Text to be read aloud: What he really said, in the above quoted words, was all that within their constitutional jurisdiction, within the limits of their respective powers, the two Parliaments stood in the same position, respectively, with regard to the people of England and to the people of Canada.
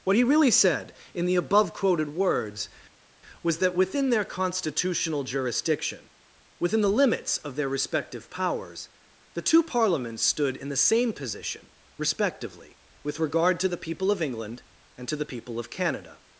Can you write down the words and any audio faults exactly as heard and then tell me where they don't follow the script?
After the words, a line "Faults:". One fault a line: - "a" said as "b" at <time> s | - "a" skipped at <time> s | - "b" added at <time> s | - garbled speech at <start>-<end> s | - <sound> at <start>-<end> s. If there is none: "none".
What he really said, in the above quoted words, was that within their constitutional jurisdiction, within the limits of their respective powers, the two Parliaments stood in the same position, respectively, with regard to the people of England and to the people of Canada.
Faults:
- "all" skipped at 3.6 s